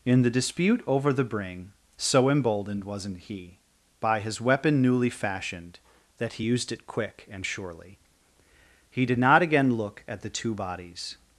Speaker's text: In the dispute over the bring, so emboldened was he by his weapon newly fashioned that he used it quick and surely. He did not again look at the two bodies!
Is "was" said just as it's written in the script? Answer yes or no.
no